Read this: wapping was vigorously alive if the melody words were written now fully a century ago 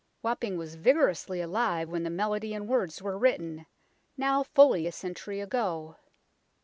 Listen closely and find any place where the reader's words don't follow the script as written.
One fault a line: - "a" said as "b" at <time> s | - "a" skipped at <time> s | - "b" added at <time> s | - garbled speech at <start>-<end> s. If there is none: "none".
- "if" said as "when" at 1.9 s
- "and" added at 2.5 s